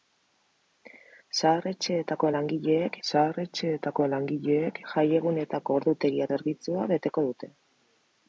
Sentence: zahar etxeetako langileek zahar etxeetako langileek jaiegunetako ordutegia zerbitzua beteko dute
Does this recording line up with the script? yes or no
yes